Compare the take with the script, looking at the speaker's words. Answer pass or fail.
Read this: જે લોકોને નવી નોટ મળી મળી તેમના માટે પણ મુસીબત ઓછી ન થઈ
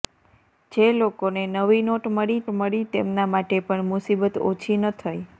pass